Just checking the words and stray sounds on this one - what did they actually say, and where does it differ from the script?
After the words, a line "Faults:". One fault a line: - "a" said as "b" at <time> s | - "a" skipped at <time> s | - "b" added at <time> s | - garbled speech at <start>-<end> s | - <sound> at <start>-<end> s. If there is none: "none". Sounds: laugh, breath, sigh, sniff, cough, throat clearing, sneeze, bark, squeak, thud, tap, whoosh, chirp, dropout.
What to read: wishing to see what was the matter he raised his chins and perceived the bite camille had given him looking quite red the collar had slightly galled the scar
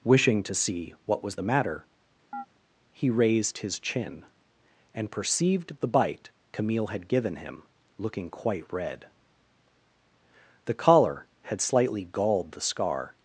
wishing to see what was the matter he raised his chin and perceived the bite camille had given him looking quite red the collar had slightly galled the scar
Faults:
- chirp at 2.3-2.5 s
- "chins" said as "chin" at 3.8 s